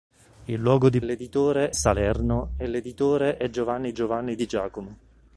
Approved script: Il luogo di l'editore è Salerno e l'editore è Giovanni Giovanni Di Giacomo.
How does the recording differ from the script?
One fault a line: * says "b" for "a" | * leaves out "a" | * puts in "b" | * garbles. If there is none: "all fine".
all fine